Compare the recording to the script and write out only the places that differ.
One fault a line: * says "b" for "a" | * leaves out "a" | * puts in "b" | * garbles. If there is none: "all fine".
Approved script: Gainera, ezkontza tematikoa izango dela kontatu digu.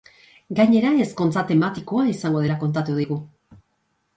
all fine